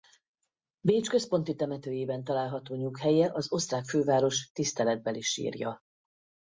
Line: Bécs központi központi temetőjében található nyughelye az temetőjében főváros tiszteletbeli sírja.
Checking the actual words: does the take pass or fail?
fail